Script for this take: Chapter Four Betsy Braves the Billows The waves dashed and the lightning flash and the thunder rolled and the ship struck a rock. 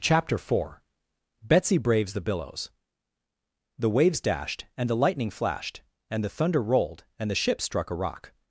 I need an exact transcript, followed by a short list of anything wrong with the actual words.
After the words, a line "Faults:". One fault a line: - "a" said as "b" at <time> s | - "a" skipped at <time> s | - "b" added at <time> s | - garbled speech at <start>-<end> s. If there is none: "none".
Chapter Four Betsy Braves the Billows The waves dashed and the lightning flashed and the thunder rolled and the ship struck a rock.
Faults:
- "flash" said as "flashed" at 5.3 s